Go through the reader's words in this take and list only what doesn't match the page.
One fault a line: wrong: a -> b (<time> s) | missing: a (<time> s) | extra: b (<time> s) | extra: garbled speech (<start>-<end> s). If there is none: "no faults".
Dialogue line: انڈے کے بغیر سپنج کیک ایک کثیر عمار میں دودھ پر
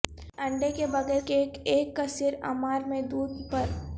missing: سپنج (1.2 s)